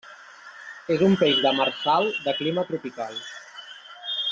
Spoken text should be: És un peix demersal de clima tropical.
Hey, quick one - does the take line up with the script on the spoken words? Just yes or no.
yes